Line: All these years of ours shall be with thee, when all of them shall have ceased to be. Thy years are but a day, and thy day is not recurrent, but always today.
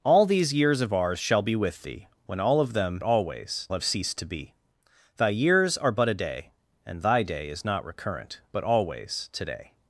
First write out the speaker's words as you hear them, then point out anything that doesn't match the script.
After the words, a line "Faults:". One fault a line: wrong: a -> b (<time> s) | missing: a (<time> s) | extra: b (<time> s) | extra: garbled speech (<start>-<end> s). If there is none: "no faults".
All these years of ours shall be with thee, when all of them always have ceased to be. Thy years are but a day, and thy day is not recurrent, but always today.
Faults:
wrong: shall -> always (3.0 s)